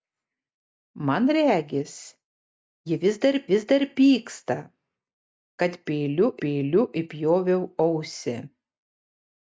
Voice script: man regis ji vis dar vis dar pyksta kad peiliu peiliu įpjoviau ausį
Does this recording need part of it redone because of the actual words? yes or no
no